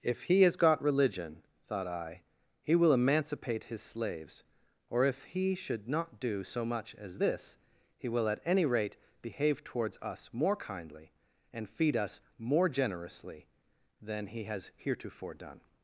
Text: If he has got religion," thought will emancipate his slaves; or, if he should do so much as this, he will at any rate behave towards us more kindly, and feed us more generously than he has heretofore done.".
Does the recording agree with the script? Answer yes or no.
no